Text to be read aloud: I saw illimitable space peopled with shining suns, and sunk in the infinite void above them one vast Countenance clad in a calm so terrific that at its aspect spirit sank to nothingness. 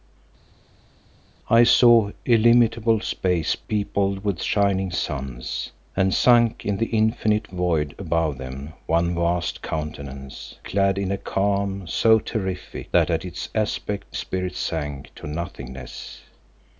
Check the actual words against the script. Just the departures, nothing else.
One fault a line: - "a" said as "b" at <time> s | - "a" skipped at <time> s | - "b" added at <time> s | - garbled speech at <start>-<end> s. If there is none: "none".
none